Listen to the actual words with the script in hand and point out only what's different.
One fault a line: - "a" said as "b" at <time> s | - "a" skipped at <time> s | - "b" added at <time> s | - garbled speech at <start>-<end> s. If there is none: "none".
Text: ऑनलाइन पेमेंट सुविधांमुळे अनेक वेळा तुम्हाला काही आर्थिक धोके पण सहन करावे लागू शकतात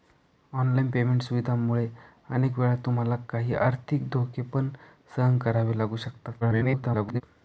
- garbled speech at 6.4-7.2 s